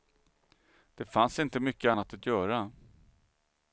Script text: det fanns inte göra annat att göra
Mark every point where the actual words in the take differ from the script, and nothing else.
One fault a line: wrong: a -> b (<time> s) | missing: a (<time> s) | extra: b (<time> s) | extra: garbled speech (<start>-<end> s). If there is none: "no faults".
wrong: göra -> mycket (1.6 s)